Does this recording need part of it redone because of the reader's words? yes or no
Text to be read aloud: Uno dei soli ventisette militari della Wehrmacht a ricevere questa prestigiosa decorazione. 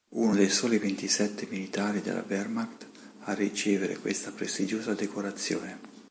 no